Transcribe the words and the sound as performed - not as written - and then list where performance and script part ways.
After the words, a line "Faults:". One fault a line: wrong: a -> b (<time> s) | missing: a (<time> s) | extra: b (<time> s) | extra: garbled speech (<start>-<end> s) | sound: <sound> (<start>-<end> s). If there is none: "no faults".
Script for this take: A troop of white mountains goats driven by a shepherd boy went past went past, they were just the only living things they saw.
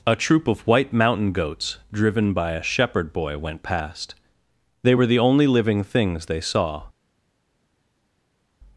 A troop of white mountain goats driven by a shepherd boy went past, they were the only living things they saw.
Faults:
wrong: mountains -> mountain (0.9 s)
missing: went past (4.2 s)
missing: just (5.1 s)